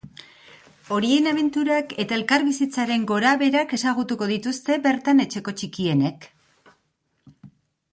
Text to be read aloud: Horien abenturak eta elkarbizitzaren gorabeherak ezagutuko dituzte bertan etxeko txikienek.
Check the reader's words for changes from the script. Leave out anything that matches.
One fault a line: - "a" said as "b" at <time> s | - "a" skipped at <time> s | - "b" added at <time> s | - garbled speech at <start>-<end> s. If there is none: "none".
none